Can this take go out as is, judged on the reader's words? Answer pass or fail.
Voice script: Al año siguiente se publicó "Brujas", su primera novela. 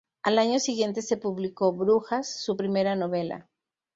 pass